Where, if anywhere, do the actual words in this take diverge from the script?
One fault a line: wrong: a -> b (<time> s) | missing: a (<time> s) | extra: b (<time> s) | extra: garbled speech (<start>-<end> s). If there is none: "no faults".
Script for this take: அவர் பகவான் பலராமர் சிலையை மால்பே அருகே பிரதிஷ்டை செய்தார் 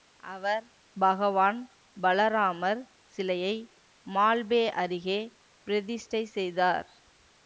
no faults